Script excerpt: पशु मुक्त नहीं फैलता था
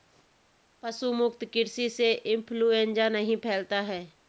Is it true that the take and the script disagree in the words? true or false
true